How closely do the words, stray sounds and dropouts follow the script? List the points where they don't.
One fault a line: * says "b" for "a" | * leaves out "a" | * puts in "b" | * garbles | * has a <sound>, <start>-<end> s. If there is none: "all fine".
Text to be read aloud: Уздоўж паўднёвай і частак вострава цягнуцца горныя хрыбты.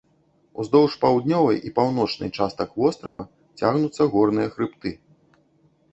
* puts in "паўночнай"
* has a dropout, 3.1-3.2 s